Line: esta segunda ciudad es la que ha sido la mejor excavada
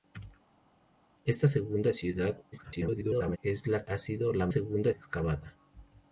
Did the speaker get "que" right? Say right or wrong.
wrong